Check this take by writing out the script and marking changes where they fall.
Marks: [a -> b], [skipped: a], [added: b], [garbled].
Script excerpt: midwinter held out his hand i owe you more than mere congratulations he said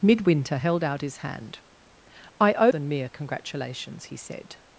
midwinter held out his hand i owe [skipped: you more] than mere congratulations he said